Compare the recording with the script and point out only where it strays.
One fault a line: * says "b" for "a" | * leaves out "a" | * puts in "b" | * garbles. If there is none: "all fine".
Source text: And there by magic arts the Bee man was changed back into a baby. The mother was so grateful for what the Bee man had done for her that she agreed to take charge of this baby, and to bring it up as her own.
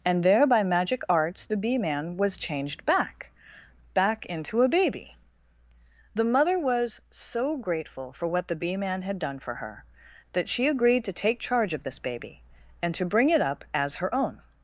* puts in "back"